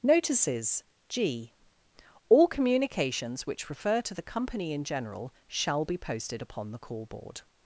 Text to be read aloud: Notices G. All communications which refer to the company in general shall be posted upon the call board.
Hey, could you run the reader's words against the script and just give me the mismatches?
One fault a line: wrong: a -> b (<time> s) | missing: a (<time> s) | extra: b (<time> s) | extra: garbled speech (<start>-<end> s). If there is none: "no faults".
no faults